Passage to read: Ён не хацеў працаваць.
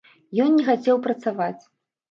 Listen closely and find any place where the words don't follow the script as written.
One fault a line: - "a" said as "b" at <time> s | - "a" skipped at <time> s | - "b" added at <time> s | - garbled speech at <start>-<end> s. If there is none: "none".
none